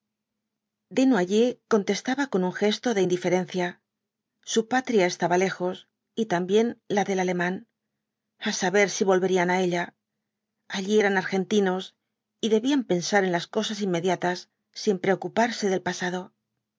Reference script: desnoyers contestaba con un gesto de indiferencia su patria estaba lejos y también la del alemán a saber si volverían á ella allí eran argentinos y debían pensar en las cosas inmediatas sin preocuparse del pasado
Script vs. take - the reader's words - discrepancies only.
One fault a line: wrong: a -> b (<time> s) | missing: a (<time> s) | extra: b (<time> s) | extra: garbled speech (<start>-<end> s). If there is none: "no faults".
no faults